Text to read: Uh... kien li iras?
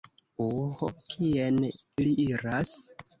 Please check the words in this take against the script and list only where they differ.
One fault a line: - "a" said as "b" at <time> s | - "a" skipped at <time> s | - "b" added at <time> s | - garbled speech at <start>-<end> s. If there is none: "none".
none